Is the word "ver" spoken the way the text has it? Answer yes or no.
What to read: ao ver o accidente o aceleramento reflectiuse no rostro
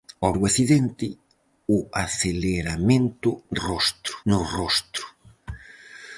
no